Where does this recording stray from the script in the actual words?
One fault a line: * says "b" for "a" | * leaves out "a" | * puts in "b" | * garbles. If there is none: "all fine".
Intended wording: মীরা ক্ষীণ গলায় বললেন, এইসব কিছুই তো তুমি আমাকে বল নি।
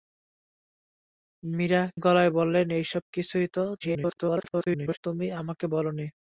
* leaves out "ক্ষীণ"
* garbles